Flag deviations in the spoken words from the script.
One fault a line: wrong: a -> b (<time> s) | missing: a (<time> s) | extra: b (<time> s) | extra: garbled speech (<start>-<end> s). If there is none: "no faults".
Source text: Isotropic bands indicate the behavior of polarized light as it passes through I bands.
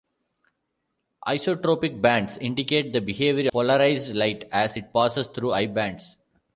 missing: of (3.5 s)